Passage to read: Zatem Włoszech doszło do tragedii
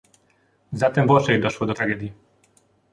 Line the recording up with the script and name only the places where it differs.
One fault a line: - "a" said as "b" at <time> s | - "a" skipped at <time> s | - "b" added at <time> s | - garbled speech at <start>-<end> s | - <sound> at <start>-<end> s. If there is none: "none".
none